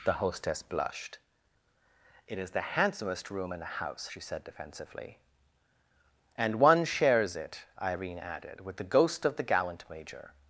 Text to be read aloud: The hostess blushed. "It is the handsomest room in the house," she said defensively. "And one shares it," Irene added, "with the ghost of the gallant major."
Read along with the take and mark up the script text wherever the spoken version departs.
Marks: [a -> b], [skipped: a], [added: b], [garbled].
The hostess blushed. "It is the handsomest room in the house," she said defensively. "And one shares it," Irene added, "with the ghost of the gallant major."